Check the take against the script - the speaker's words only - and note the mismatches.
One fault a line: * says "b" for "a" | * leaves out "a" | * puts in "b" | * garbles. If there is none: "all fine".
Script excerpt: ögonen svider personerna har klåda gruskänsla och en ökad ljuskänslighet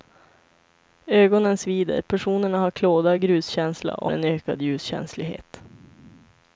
all fine